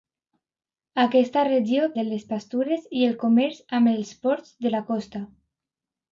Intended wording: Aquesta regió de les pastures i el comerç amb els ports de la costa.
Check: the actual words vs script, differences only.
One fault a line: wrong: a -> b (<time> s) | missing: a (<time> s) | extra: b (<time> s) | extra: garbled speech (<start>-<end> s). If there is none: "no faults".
no faults